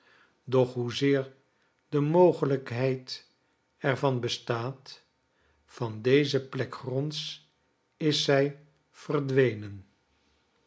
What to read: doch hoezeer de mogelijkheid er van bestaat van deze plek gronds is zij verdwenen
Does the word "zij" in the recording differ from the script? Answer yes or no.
no